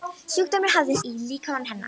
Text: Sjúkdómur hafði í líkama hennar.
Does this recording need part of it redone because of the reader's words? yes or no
no